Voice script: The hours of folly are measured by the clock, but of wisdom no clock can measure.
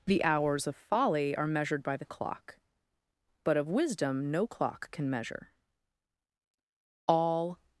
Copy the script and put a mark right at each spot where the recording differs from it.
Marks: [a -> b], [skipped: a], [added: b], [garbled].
The hours of folly are measured by the clock, but of wisdom no clock can measure. [added: All]